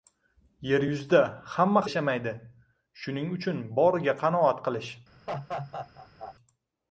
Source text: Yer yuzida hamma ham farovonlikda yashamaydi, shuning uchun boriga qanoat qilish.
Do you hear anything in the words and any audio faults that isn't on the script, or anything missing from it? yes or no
yes